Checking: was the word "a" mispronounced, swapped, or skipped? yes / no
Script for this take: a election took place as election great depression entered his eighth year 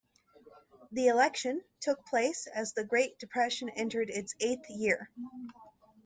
yes